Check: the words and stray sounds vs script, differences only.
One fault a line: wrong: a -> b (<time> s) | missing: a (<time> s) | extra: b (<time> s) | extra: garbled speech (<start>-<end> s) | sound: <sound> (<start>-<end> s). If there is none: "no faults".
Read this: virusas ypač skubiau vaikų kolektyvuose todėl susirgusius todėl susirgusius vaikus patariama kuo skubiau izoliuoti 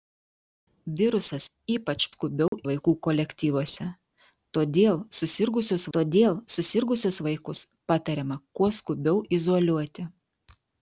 sound: dropout (2.5-2.5 s)